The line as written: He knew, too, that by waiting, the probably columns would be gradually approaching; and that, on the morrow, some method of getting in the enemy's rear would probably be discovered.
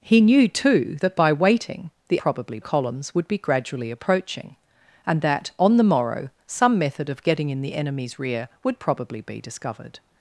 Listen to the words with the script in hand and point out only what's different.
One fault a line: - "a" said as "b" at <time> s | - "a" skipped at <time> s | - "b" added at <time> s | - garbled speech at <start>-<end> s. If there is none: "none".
none